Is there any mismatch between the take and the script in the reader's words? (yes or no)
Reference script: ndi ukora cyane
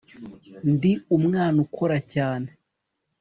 yes